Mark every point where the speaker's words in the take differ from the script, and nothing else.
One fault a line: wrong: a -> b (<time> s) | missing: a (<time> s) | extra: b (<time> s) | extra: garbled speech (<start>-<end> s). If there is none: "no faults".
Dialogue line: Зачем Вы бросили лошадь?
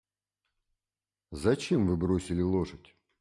no faults